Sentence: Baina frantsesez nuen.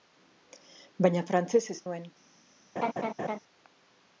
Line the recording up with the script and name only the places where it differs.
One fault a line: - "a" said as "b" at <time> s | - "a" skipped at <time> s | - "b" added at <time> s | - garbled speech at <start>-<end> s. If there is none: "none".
none